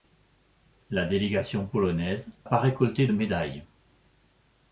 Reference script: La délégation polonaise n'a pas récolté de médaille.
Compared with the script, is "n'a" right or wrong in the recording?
wrong